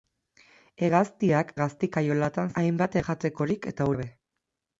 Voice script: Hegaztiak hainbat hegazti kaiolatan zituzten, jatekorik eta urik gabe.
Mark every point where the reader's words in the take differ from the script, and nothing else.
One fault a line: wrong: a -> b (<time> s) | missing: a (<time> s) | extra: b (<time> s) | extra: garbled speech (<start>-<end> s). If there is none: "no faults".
missing: hainbat (1.5 s)
wrong: zituzten -> hainbat (2.6 s)
missing: urik (3.9 s)